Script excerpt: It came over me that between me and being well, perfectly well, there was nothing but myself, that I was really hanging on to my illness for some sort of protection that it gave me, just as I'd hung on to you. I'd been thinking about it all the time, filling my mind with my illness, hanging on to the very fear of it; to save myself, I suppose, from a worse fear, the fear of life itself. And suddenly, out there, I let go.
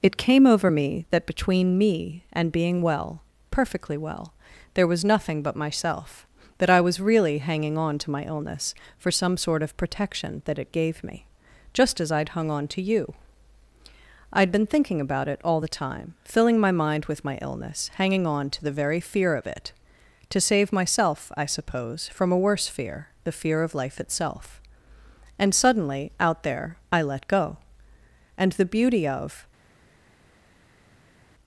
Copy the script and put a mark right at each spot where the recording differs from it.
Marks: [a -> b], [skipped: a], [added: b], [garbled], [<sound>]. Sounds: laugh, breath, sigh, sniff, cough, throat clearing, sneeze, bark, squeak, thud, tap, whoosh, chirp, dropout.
It came over me that between me and being well, perfectly well, there was nothing but myself, that I was really hanging on to my illness for some sort of protection that it gave me, just as I'd hung on to you. I'd been thinking about it all the time, filling my mind with my illness, hanging on to the very fear of it; to save myself, I suppose, from a worse fear, the fear of life itself. And suddenly, out there, I let go. [added: And the beauty of]